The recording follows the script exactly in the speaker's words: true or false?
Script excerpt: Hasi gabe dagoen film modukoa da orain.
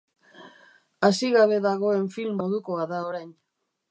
true